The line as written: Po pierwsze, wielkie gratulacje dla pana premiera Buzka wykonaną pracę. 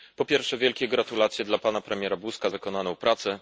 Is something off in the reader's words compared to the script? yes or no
no